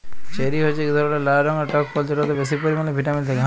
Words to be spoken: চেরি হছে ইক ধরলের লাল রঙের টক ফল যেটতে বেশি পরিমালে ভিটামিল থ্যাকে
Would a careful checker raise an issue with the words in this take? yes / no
no